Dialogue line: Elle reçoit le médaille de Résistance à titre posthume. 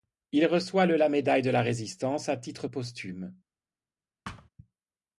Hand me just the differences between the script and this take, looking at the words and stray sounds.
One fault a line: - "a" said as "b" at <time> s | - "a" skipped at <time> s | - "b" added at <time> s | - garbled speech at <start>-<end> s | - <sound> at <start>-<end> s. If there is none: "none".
- "Elle" said as "Il" at 0.3 s
- "la" added at 0.9 s
- "la" added at 1.5 s
- thud at 4.2-4.5 s